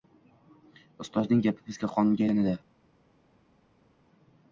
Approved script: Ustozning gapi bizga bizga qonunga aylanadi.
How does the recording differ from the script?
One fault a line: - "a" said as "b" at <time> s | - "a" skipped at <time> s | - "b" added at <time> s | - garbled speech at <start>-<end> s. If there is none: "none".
- "bizga" skipped at 1.9 s